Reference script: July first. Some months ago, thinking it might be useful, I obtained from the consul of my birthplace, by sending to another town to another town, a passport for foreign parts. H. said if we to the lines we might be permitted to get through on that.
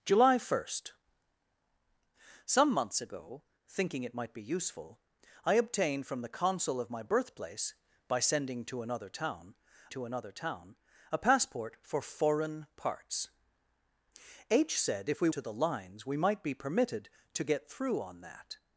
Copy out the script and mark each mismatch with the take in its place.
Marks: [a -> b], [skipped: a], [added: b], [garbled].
July first. Some months ago, thinking it might be useful, I obtained from the consul of my birthplace, by sending to another town to another town, a passport for foreign parts. H. said if we to the lines we might be permitted to get through on that.